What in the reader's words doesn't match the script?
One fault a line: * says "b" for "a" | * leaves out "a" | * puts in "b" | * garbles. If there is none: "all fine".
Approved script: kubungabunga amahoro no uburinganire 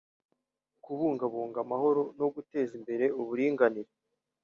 * puts in "guteza imbere"